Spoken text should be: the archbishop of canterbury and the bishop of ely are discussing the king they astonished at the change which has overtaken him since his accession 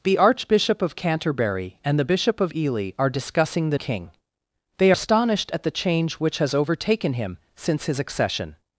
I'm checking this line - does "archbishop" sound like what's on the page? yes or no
yes